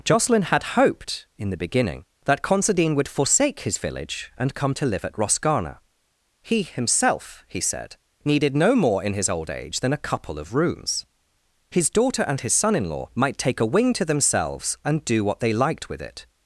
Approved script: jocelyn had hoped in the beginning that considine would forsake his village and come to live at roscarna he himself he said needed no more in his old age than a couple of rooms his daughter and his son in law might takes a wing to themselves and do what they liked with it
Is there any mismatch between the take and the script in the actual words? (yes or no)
yes